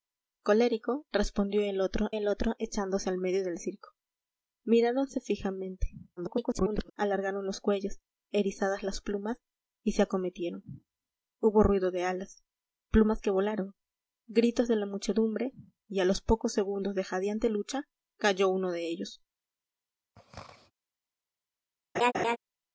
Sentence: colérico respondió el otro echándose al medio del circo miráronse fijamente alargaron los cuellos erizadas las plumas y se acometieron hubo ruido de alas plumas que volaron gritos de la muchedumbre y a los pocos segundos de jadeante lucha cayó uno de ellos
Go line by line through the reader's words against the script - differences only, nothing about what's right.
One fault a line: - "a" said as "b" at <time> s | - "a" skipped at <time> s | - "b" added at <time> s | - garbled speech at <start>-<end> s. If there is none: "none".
- "el otro" added at 2.1 s
- garbled speech at 6.2-6.9 s